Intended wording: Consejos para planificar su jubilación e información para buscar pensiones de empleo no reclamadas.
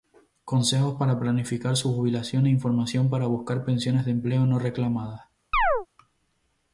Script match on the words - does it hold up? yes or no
yes